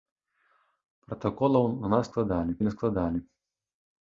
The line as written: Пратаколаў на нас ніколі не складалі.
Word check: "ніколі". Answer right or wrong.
wrong